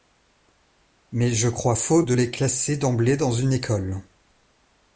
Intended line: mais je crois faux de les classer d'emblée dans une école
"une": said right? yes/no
yes